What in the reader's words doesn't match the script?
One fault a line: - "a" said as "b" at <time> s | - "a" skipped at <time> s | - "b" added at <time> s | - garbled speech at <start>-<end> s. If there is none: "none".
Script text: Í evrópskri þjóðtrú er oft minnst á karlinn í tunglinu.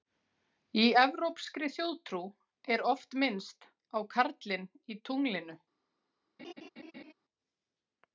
none